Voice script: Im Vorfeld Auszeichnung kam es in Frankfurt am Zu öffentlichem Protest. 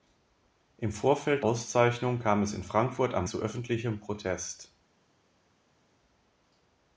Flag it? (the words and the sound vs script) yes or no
no